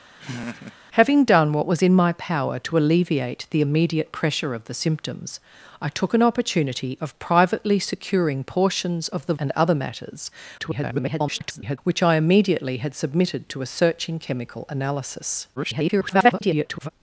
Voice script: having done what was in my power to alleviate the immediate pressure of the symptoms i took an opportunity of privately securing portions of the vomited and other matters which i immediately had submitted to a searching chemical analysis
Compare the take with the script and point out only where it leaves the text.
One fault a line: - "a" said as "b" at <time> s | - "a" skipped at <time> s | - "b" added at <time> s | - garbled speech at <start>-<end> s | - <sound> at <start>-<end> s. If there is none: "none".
- laugh at 0.2-0.8 s
- "vomited" skipped at 9.3 s
- garbled speech at 10.6-11.8 s
- garbled speech at 15.6-16.9 s